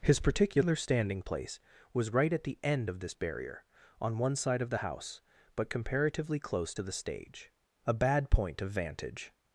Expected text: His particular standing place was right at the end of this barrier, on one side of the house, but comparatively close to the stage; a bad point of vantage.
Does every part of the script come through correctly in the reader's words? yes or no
yes